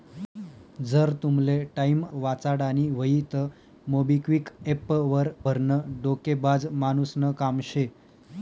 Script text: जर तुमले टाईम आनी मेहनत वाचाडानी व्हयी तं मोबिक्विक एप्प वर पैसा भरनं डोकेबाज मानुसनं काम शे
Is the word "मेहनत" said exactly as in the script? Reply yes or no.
no